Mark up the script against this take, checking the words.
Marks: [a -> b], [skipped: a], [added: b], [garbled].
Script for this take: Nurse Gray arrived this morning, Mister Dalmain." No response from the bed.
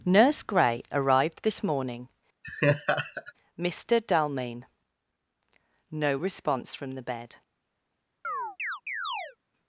Nurse Gray arrived this morning, Mister Dalmain." No response from the bed.